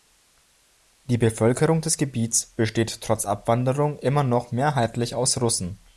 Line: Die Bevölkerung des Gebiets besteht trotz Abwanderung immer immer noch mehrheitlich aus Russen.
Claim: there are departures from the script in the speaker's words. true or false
true